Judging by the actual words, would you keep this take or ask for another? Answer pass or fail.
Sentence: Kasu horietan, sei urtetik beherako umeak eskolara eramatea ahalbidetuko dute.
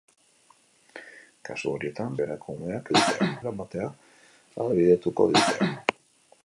fail